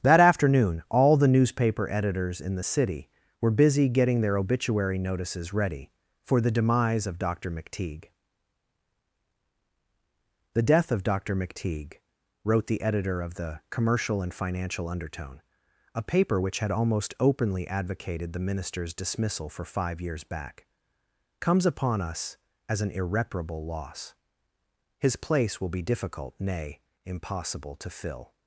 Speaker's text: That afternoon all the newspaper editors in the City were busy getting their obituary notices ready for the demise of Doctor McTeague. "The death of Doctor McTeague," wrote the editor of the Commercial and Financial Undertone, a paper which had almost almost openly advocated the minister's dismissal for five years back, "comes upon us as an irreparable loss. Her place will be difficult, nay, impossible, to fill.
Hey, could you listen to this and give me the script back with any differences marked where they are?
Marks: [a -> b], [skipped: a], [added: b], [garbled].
That afternoon all the newspaper editors in the City were busy getting their obituary notices ready for the demise of Doctor McTeague. "The death of Doctor McTeague," wrote the editor of the Commercial and Financial Undertone, a paper which had almost [skipped: almost] openly advocated the minister's dismissal for five years back, "comes upon us as an irreparable loss. [Her -> His] place will be difficult, nay, impossible, to fill.